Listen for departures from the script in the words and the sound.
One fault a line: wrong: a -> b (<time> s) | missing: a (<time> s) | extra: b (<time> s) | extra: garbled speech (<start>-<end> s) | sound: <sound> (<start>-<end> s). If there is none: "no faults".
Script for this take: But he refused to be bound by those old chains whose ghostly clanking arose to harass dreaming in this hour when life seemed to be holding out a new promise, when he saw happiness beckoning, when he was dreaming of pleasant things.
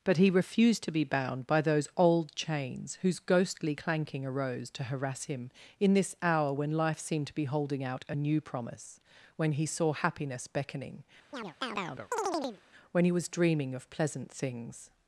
wrong: dreaming -> him (5.2 s)
sound: chirp (11.3-12.6 s)